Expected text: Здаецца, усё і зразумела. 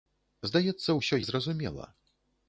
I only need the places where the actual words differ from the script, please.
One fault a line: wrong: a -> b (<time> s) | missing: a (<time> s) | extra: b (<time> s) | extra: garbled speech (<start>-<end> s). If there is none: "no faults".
no faults